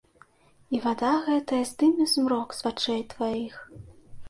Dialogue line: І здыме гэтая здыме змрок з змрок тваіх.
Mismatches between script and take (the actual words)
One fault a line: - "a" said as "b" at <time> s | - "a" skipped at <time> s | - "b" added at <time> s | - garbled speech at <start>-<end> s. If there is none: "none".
- "здыме" said as "вада" at 0.8 s
- "змрок" said as "вачэй" at 2.7 s